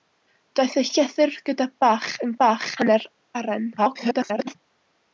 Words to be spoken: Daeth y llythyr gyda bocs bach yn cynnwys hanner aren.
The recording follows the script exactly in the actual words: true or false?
false